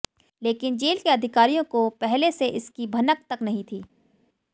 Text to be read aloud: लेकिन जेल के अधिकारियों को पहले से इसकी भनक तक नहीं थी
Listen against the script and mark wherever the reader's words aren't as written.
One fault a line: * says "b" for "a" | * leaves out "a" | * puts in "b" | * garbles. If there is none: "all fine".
all fine